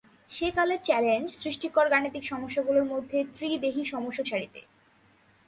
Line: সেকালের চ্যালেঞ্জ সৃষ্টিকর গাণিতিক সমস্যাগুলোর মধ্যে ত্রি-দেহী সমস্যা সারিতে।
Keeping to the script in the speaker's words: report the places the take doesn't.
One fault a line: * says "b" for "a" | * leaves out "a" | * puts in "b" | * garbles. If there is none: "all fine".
all fine